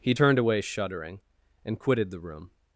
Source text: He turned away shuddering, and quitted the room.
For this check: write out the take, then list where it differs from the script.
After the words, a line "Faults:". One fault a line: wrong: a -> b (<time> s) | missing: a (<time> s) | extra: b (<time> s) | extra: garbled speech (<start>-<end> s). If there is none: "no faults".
He turned away shuddering, and quitted the room.
Faults:
no faults